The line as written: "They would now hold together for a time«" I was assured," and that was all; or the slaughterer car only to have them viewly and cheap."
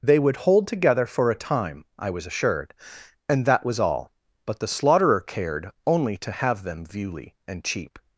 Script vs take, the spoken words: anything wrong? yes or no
yes